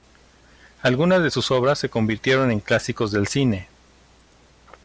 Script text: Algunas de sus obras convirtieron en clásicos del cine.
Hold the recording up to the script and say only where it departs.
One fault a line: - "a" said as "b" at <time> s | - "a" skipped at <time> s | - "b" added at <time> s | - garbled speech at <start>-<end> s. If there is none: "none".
- "se" added at 1.8 s